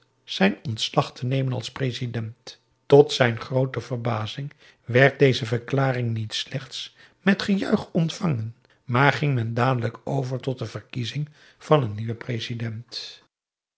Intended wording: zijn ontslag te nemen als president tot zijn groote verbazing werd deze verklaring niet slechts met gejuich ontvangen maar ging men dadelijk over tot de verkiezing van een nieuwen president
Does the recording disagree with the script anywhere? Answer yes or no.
no